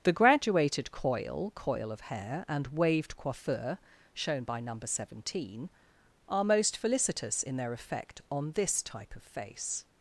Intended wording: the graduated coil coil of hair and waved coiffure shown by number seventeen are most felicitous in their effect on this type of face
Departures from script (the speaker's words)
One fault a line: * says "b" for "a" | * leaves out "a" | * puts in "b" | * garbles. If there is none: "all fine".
all fine